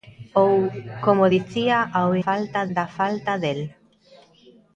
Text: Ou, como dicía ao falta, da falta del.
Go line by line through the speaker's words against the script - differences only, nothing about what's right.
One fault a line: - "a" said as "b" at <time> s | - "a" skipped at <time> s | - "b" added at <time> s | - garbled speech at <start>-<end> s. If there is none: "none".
none